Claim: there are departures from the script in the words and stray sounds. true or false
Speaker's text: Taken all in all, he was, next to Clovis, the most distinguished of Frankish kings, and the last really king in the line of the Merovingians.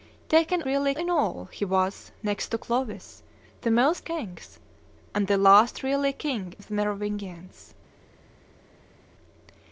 true